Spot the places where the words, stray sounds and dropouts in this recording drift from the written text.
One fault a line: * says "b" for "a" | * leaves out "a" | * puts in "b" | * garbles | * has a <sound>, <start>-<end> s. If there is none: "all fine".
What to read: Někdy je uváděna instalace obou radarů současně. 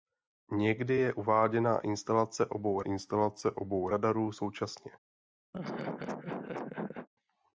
* puts in "instalace obou"
* has a laugh, 5.5-7.1 s